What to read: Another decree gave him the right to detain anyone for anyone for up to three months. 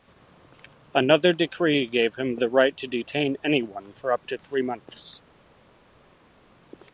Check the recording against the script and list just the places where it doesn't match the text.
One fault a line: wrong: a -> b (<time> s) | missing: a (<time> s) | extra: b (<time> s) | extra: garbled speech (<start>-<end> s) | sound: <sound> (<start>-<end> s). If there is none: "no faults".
missing: anyone for (4.1 s)